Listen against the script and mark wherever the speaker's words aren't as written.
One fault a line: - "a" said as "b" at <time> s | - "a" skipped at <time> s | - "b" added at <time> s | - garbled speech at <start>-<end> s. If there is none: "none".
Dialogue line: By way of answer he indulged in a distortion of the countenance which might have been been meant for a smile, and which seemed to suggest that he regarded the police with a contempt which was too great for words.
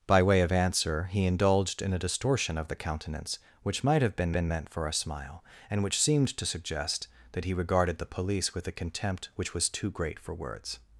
none